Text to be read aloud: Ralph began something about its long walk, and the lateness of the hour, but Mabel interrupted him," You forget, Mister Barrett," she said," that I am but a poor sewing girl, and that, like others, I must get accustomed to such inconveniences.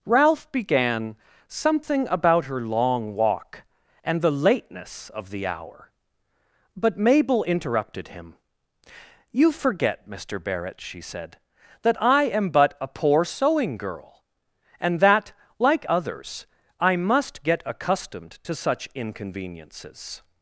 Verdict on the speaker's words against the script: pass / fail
fail